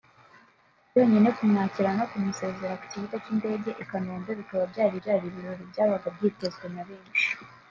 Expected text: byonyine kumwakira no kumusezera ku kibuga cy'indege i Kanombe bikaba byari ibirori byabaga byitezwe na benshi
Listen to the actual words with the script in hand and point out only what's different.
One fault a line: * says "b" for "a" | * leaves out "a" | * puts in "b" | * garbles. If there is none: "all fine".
* puts in "byari"